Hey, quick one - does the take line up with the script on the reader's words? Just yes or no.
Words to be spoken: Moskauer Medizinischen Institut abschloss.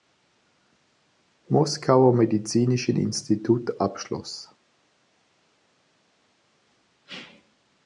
yes